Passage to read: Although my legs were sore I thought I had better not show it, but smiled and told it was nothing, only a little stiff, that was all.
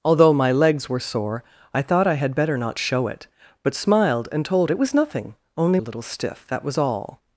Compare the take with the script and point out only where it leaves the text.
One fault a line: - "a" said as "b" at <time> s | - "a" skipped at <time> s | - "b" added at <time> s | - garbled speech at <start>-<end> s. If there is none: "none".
none